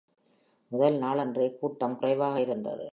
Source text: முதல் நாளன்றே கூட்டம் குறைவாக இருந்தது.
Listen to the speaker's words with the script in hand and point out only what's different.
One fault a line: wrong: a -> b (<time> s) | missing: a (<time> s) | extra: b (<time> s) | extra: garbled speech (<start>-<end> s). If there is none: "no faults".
no faults